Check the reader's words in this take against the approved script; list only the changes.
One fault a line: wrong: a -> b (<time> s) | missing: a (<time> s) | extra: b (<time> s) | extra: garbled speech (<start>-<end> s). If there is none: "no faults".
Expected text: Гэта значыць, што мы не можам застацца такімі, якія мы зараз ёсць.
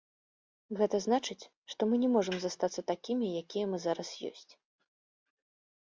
no faults